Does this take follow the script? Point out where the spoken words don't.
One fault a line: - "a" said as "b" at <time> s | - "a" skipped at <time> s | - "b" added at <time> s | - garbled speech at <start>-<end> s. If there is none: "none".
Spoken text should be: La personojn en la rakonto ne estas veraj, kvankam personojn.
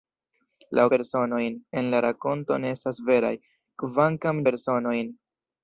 none